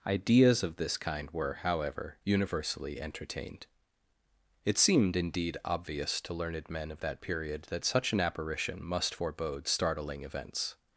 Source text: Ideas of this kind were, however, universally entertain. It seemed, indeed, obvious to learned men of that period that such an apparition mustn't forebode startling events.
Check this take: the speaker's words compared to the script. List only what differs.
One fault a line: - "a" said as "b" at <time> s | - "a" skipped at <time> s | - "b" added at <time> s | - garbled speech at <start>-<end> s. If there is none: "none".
- "entertain" said as "entertained" at 3.0 s
- "mustn't" said as "must" at 8.8 s